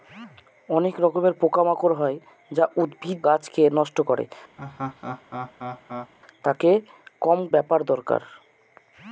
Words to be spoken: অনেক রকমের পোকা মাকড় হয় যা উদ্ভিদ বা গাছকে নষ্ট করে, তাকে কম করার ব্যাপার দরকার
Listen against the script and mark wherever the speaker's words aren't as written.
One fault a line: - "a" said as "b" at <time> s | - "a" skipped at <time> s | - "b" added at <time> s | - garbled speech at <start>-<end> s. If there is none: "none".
- "বা" skipped at 3.2 s
- "করার" skipped at 7.4 s